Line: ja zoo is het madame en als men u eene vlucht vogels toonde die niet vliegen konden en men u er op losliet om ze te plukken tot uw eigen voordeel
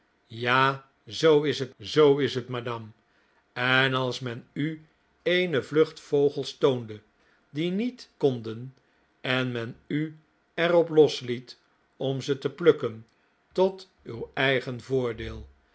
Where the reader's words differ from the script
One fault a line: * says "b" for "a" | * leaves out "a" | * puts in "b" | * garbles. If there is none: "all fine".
* puts in "zoo is het"
* leaves out "vliegen"